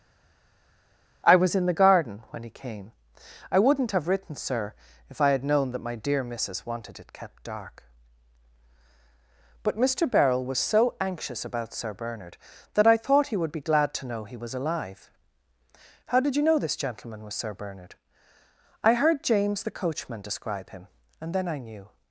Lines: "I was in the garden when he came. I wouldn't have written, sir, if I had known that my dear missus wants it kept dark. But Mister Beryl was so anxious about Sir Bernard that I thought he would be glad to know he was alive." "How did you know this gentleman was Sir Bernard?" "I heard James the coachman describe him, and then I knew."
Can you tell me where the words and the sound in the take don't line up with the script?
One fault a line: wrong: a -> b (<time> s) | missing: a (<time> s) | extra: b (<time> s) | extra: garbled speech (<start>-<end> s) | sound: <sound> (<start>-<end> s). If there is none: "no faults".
wrong: wants -> wanted (6.7 s)